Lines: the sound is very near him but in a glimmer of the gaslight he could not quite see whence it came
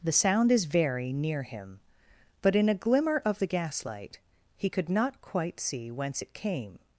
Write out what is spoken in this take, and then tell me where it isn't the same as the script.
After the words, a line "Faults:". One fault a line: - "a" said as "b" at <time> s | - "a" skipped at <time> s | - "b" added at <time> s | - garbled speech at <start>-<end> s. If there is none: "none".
the sound is very near him but in a glimmer of the gaslight he could not quite see whence it came
Faults:
none